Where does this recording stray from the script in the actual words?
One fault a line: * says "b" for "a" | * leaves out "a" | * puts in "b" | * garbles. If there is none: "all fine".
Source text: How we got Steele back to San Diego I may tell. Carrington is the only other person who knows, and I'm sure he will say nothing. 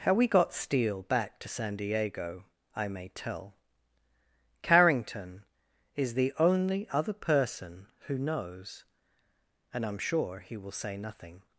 all fine